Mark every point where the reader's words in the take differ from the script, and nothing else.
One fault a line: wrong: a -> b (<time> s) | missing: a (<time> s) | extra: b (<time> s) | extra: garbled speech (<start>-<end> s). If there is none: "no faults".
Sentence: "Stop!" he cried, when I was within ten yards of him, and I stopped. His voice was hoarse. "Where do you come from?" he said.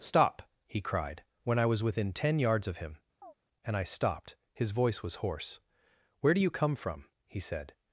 no faults